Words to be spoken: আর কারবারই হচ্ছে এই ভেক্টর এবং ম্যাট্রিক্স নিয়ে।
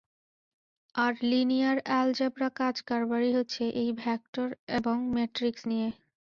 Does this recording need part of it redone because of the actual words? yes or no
yes